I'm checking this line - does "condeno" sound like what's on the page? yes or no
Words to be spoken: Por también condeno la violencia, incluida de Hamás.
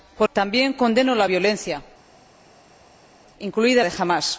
yes